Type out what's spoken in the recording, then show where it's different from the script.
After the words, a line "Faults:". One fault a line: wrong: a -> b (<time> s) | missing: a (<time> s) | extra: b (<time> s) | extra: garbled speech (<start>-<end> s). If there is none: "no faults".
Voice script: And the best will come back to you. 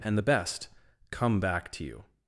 And the best come back to you.
Faults:
missing: will (0.7 s)